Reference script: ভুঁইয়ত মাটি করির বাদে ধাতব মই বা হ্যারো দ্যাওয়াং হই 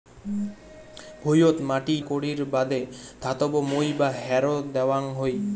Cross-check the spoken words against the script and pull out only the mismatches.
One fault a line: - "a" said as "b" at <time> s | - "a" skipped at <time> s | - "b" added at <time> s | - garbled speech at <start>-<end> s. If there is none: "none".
none